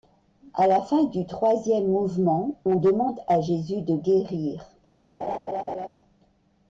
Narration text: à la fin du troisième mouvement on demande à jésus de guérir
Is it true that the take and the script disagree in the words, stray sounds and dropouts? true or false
true